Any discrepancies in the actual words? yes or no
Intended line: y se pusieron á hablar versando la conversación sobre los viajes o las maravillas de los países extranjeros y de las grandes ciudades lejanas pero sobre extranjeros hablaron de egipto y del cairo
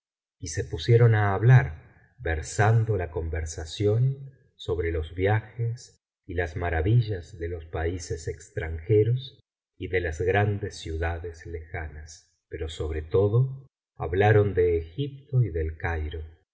yes